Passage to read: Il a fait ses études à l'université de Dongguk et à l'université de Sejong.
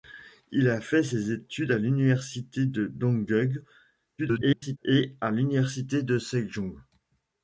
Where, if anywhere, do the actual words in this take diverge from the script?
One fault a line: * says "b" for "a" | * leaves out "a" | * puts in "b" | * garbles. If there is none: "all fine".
* garbles